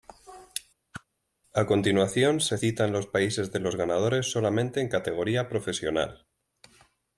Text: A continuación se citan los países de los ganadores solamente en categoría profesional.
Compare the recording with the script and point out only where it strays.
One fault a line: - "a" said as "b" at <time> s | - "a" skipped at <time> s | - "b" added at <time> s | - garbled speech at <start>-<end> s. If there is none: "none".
none